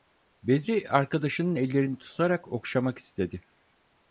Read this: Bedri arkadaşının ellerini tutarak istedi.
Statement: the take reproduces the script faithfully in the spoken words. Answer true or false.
false